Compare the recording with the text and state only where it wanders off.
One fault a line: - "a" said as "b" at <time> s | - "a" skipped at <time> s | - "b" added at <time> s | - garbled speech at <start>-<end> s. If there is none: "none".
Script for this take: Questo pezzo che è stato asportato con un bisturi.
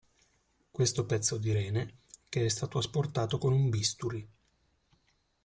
- "di rene" added at 1.4 s